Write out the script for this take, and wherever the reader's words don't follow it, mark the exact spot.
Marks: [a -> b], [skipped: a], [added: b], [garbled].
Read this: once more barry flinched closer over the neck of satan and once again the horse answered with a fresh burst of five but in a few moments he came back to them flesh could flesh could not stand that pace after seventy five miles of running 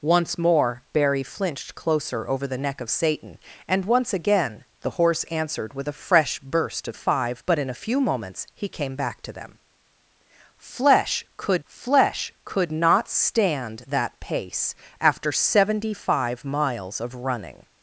once more barry flinched closer over the neck of satan and once again the horse answered with a fresh burst of five but in a few moments he came back to them flesh could flesh could not stand that pace after seventy five miles of running